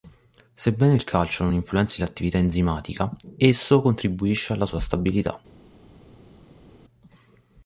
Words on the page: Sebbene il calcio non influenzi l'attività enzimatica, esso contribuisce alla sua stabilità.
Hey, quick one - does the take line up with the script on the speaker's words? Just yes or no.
yes